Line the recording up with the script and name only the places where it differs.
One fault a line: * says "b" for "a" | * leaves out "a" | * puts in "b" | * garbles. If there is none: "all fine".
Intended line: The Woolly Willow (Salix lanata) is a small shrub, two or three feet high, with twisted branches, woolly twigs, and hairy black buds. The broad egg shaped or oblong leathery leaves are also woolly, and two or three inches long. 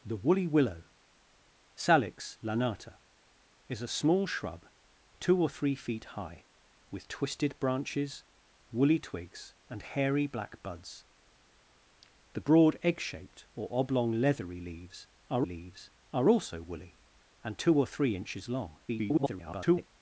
* puts in "leaves are"
* garbles